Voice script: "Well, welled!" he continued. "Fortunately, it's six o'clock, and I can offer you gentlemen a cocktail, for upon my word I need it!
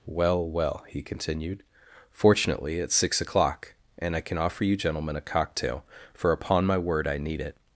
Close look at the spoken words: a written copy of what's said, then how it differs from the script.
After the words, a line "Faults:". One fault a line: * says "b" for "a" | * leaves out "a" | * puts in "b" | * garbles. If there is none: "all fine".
"Well, well!" he continued. "Fortunately, it's six o'clock, and I can offer you gentlemen a cocktail, for upon my word I need it!
Faults:
* says "well" for "welled"